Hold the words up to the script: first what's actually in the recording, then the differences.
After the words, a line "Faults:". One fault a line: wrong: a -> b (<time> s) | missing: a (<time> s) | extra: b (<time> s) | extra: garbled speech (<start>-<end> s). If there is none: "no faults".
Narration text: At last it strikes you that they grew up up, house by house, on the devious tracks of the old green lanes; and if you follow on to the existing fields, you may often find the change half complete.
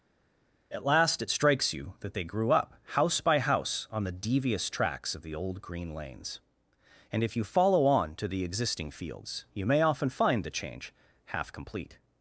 At last it strikes you that they grew up, house by house, on the devious tracks of the old green lanes; and if you follow on to the existing fields, you may often find the change half complete.
Faults:
missing: up (2.7 s)